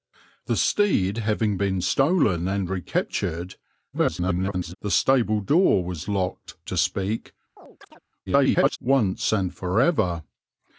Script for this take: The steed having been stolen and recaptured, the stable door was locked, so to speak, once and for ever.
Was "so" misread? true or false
true